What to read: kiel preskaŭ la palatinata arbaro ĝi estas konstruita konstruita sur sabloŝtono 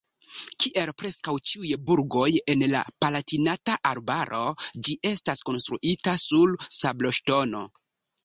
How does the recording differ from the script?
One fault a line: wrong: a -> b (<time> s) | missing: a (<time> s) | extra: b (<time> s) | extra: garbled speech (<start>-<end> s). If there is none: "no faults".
extra: ĉiuj burgoj en (1.5 s)
missing: konstruita (6.2 s)